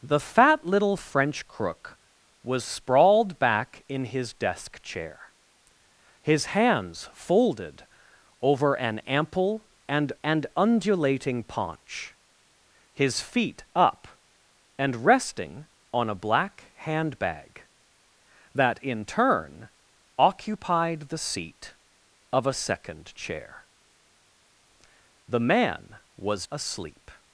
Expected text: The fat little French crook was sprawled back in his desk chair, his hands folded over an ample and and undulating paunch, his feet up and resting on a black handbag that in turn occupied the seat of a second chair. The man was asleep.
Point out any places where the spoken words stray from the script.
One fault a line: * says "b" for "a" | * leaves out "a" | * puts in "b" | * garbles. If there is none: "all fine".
all fine